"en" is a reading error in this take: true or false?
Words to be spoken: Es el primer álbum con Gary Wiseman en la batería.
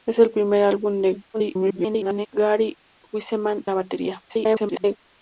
true